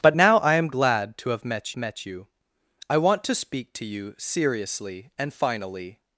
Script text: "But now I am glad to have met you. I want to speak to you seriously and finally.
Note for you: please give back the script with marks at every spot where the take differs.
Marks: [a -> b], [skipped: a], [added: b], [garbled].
"But now I am glad to have met [added: met] you. I want to speak to you seriously and finally.